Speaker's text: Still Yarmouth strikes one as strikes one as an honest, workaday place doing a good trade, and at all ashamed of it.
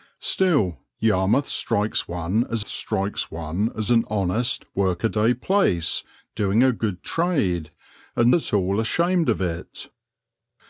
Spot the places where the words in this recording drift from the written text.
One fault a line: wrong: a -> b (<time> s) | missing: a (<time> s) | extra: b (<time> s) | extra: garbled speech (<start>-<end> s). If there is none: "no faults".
no faults